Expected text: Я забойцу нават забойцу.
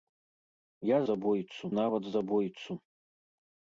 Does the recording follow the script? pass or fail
pass